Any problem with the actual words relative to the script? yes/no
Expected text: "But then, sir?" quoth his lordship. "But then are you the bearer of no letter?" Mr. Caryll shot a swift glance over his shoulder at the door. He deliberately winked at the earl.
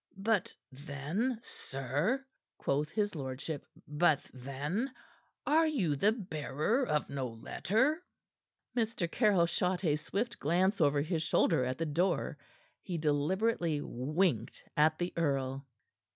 no